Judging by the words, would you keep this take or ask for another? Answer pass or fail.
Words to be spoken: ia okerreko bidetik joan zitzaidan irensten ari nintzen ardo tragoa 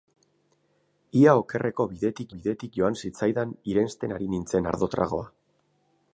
fail